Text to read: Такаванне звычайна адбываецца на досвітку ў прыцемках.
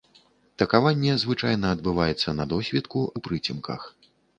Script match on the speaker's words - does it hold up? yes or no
yes